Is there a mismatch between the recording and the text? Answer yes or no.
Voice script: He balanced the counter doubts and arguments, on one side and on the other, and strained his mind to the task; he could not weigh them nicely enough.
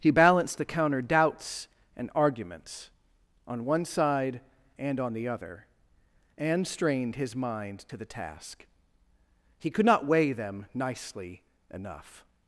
no